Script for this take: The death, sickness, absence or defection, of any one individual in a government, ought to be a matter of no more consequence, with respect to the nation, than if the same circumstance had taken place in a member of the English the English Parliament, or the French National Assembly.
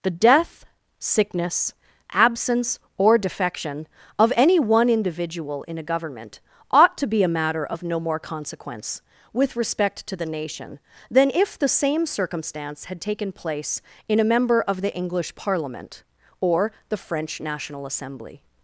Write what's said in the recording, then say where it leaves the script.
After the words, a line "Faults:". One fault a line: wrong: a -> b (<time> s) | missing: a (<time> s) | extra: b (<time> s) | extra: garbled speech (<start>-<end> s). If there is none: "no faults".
The death, sickness, absence or defection, of any one individual in a government, ought to be a matter of no more consequence, with respect to the nation, than if the same circumstance had taken place in a member of the English Parliament, or the French National Assembly.
Faults:
missing: the English (15.4 s)